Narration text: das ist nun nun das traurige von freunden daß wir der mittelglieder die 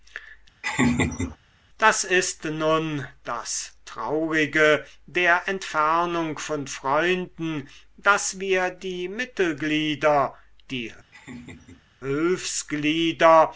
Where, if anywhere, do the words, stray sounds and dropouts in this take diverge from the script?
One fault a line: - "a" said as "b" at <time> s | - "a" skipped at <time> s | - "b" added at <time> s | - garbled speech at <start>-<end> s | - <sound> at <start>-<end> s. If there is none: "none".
- laugh at 0.6-1.4 s
- "nun" skipped at 3.1 s
- "der entfernung" added at 5.1 s
- "der" said as "die" at 8.7 s
- laugh at 11.1-11.9 s